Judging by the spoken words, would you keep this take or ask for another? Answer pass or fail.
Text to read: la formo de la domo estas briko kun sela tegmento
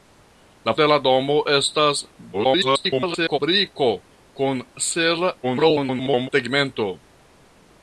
fail